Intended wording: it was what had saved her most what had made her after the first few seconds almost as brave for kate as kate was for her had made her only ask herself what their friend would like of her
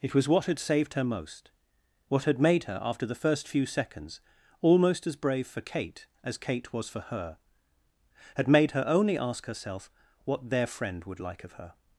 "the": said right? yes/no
yes